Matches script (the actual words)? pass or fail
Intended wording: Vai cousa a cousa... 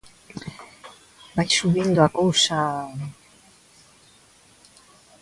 fail